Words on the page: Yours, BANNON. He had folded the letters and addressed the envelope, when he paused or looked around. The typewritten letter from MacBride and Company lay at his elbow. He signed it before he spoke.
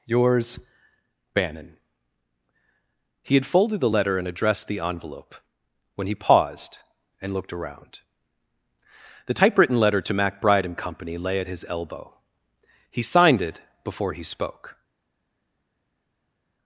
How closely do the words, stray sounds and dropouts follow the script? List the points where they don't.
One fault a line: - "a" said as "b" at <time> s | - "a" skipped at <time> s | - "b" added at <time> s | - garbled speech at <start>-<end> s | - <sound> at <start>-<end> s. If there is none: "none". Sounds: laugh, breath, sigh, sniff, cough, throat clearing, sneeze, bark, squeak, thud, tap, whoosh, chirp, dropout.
- "letters" said as "letter" at 3.9 s
- "or" said as "and" at 7.2 s
- "from" said as "to" at 10.0 s